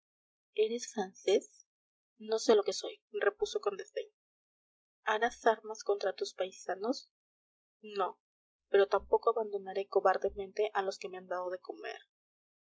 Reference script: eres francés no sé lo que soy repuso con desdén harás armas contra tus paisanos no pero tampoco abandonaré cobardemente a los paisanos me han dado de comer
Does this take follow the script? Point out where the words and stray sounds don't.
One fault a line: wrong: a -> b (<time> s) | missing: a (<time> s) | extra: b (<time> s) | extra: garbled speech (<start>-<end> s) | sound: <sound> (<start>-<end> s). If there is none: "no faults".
wrong: paisanos -> que (11.0 s)